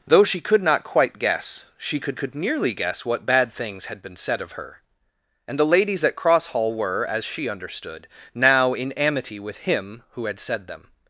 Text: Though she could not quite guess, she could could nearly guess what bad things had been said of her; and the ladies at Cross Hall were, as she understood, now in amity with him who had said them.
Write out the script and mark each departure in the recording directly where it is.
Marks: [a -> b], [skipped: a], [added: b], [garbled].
Though she could not quite guess, she could could nearly guess what bad things had been said of her; and the ladies at Cross Hall were, as she understood, now in amity with him who had said them.